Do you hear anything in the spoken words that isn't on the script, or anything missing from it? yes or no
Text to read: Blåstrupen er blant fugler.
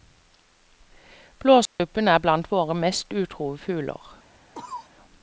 yes